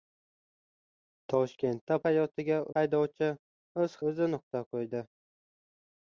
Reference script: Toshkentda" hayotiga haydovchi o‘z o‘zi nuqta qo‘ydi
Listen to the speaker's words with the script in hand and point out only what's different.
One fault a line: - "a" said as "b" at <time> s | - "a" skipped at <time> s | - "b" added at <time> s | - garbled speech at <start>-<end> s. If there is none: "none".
none